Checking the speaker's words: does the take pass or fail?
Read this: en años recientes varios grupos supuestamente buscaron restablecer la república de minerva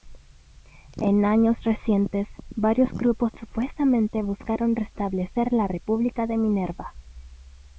pass